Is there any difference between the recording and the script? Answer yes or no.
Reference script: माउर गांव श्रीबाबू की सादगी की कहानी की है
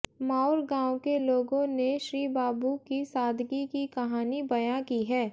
yes